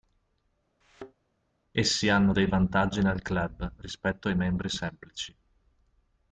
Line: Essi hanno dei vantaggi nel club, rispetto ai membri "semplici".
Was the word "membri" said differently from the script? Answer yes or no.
no